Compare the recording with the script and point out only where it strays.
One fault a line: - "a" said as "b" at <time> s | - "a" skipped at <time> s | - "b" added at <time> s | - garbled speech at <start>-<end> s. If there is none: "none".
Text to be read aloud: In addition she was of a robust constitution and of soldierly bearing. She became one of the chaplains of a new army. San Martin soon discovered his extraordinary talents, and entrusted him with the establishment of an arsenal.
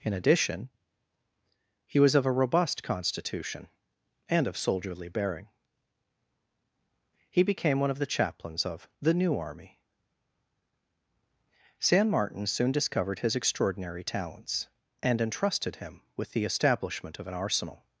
- "she" said as "he" at 1.9 s
- "She" said as "He" at 7.3 s
- "a" said as "the" at 9.0 s